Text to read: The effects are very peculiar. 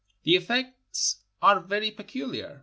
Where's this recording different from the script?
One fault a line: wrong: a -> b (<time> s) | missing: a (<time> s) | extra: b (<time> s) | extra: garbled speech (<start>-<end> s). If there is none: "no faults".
no faults